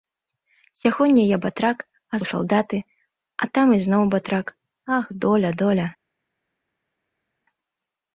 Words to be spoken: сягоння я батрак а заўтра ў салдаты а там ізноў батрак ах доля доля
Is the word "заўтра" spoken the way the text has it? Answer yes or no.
no